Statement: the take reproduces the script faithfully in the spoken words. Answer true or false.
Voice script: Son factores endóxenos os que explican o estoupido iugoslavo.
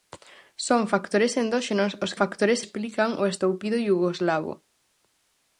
false